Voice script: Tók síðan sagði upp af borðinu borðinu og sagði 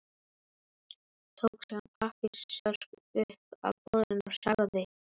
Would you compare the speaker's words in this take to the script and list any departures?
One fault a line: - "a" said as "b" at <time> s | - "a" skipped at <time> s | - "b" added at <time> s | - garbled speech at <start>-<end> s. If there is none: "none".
- "sagði" said as "pappírsörk" at 2.0 s
- "borðinu" skipped at 4.3 s